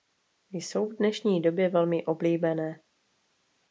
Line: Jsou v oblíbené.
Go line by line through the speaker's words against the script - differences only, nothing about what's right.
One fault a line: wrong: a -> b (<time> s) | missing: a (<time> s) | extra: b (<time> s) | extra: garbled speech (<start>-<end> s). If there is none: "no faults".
extra: dnešní době velmi (0.9 s)